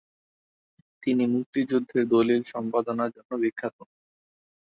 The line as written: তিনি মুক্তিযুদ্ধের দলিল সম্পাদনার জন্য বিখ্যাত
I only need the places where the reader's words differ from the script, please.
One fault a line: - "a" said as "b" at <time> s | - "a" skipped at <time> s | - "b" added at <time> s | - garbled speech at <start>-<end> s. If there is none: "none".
none